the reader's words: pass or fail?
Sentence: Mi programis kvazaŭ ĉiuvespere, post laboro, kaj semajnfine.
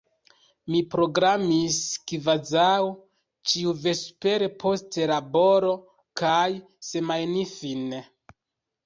pass